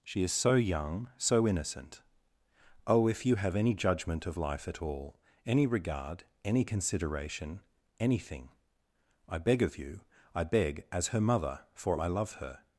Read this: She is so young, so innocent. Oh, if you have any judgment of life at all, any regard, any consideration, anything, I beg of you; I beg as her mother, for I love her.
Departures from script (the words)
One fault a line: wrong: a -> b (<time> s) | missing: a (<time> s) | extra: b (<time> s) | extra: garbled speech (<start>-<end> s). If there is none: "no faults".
no faults